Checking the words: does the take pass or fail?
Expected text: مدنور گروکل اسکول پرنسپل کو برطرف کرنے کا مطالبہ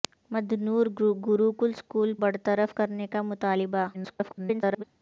fail